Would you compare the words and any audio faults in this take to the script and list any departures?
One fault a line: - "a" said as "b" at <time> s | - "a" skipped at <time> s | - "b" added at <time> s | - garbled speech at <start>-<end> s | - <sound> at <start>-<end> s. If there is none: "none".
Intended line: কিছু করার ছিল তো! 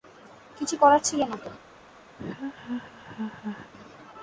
- "না" added at 1.2 s
- laugh at 2.2-3.7 s